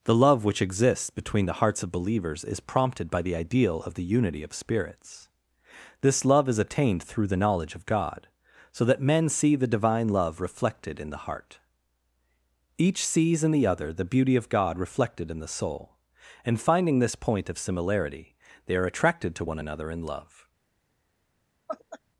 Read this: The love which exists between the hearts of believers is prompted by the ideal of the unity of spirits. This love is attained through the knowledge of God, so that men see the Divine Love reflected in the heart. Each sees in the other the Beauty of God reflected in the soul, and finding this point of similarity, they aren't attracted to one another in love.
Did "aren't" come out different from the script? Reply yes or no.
yes